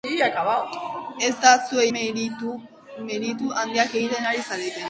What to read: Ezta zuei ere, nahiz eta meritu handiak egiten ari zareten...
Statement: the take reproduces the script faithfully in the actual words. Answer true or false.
false